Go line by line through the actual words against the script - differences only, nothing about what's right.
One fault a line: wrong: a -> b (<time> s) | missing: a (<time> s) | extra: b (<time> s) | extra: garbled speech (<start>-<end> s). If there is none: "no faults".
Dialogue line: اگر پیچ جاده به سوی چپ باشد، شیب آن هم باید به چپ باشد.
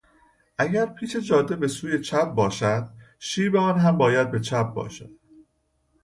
no faults